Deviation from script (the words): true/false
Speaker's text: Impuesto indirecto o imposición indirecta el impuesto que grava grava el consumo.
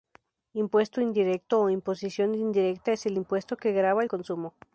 true